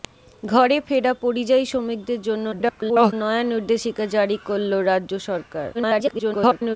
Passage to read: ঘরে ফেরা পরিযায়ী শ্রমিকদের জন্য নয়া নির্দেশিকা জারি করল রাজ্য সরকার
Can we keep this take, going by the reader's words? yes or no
no